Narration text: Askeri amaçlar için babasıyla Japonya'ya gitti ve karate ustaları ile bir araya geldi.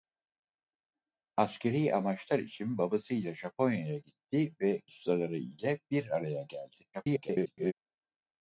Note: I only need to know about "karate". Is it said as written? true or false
false